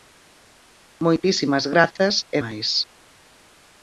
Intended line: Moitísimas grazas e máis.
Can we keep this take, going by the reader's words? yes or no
yes